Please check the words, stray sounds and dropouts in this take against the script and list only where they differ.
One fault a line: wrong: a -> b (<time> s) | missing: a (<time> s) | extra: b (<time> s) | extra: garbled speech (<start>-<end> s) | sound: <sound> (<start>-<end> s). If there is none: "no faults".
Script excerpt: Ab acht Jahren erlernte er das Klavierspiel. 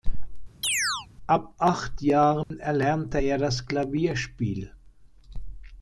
sound: chirp (0.6-1.1 s)
sound: dropout (2.4-2.5 s)